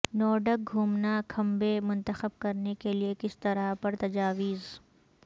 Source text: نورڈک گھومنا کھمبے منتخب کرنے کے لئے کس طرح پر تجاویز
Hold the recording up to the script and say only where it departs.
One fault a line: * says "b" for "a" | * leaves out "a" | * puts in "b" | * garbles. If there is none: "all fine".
all fine